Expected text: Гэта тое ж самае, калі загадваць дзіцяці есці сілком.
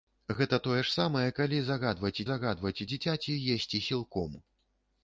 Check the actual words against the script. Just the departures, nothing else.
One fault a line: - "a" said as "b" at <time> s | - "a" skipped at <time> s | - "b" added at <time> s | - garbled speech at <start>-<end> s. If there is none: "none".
- "загадваць" added at 2.3 s